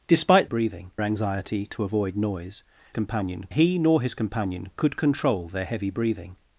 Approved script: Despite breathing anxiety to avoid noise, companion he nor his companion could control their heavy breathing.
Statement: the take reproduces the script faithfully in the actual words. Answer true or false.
true